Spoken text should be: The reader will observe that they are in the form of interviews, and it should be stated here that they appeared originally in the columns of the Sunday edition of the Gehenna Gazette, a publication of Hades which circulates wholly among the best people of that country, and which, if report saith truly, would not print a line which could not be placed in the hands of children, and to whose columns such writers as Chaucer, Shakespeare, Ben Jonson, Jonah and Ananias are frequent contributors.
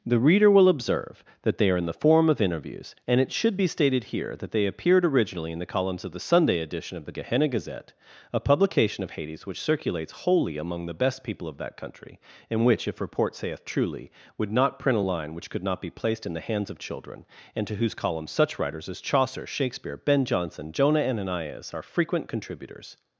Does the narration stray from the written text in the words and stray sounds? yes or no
yes